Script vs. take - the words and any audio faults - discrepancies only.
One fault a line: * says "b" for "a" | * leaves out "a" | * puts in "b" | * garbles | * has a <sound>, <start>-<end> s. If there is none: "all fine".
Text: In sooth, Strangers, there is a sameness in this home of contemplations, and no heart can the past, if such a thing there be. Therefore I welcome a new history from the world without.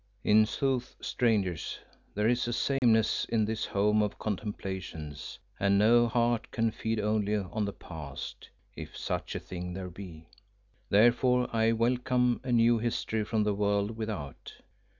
* has a dropout, 2.8-2.8 s
* puts in "feed only on"